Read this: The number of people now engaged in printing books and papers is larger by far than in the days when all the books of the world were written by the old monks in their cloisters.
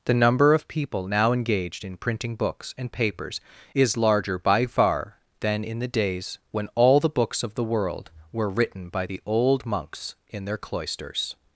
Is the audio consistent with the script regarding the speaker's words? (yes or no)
yes